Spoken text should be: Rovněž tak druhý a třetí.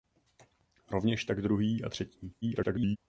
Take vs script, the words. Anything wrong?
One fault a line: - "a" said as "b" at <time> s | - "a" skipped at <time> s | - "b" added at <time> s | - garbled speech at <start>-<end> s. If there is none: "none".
- garbled speech at 2.4-3.0 s